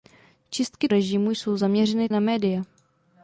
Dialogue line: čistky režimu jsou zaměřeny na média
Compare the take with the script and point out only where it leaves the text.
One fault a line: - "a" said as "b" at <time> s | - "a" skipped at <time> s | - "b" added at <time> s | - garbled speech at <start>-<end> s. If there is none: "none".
none